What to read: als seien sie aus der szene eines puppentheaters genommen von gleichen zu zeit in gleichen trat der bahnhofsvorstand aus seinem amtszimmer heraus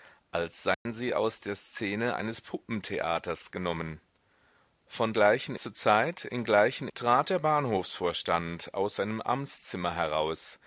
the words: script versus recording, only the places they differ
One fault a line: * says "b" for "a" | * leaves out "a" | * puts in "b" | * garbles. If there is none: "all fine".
all fine